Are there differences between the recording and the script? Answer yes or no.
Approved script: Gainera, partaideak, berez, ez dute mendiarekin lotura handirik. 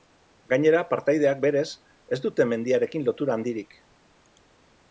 no